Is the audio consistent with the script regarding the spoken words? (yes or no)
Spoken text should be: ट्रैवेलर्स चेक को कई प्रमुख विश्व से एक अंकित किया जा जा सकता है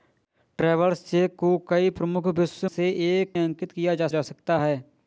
yes